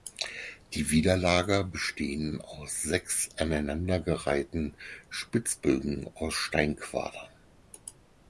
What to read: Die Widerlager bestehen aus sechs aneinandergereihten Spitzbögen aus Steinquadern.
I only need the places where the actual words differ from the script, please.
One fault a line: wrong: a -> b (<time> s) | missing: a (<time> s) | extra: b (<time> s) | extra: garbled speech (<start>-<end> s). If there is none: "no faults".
no faults